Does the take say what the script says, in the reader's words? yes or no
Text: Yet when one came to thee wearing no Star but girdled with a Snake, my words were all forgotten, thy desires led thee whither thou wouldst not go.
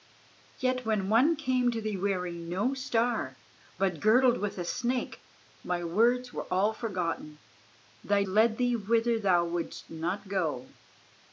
no